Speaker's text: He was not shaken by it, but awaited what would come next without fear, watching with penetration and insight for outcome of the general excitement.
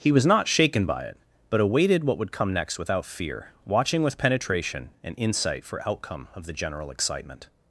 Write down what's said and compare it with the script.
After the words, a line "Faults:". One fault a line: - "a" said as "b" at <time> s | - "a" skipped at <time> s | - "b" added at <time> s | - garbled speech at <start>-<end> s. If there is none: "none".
He was not shaken by it, but awaited what would come next without fear, watching with penetration and insight for outcome of the general excitement.
Faults:
none